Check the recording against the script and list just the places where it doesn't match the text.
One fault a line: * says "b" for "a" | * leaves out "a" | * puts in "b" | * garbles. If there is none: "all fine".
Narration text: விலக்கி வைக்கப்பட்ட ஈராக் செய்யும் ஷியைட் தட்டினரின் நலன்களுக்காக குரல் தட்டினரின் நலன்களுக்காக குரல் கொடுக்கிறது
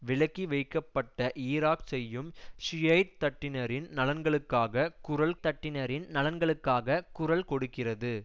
all fine